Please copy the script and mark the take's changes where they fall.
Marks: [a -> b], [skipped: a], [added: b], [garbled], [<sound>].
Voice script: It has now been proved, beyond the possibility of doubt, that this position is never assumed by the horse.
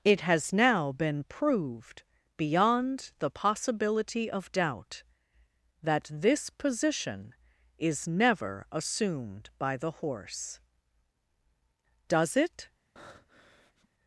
It has now been proved, beyond the possibility of doubt, that this position is never assumed by the horse. [added: Does it] [breath]